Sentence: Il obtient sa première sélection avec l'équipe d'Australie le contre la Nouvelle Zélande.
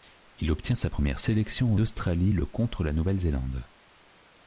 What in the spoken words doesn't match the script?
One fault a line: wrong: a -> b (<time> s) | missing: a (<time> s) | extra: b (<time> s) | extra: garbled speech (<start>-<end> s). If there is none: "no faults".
missing: avec l'équipe (1.8 s)